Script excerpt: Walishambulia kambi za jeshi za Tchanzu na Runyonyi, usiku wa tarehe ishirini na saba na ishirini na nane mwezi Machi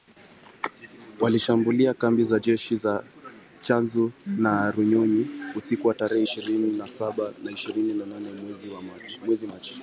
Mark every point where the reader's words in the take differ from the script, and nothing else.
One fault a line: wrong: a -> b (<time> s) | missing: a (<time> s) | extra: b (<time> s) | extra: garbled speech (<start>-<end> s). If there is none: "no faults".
no faults